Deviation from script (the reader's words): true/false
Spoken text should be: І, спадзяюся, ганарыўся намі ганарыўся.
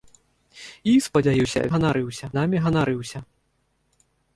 false